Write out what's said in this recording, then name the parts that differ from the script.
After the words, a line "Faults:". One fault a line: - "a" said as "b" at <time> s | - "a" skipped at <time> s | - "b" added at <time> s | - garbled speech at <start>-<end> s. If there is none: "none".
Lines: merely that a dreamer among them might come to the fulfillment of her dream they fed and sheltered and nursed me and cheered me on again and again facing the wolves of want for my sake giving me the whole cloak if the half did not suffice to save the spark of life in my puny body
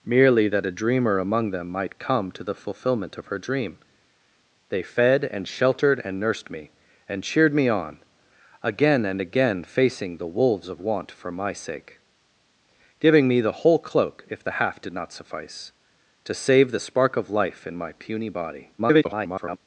merely that a dreamer among them might come to the fulfillment of her dream they fed and sheltered and nursed me and cheered me on again and again facing the wolves of want for my sake giving me the whole cloak if the half did not suffice to save the spark of life in my puny body [garbled]
Faults:
- garbled speech at 18.8-19.6 s